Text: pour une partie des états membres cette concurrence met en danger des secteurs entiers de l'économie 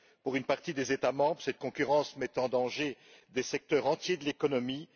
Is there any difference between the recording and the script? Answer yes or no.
no